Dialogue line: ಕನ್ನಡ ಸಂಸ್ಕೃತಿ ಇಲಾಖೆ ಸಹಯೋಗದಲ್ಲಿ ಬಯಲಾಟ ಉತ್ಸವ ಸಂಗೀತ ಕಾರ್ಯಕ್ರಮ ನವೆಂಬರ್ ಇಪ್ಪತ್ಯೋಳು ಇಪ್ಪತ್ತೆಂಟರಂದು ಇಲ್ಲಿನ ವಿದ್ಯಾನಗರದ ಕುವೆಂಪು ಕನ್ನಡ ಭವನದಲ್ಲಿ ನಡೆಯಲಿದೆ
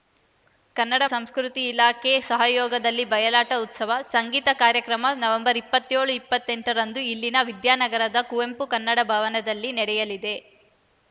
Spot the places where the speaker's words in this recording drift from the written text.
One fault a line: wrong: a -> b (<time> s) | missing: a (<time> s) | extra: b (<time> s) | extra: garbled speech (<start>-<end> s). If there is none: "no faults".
no faults